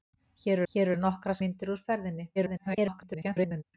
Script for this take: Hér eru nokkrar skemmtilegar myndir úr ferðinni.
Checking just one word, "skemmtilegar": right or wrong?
wrong